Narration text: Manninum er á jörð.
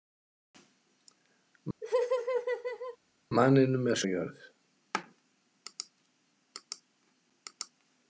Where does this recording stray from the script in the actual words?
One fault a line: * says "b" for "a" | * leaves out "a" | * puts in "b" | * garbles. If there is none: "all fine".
all fine